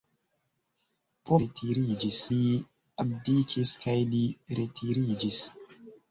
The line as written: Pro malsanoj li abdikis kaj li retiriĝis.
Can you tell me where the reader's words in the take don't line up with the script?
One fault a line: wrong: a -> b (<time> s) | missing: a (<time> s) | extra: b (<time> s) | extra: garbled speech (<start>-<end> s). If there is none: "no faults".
wrong: malsanoj -> retiriĝis (1.4 s)